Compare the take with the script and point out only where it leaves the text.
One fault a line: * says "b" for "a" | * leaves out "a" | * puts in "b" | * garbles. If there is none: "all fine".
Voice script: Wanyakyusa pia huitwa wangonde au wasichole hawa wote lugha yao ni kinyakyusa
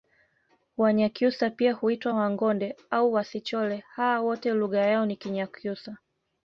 all fine